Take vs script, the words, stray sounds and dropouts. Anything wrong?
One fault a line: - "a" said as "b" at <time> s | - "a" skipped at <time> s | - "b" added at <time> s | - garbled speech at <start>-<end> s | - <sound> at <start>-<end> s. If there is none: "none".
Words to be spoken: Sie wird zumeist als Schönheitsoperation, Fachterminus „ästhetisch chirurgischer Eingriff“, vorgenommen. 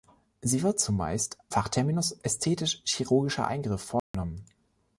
- "als Schönheitsoperation" skipped at 1.4 s
- dropout at 4.0-4.1 s